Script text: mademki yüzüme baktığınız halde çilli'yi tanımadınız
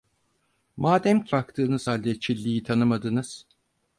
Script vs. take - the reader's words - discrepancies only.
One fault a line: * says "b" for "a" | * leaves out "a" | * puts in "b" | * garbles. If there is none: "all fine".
* leaves out "yüzüme"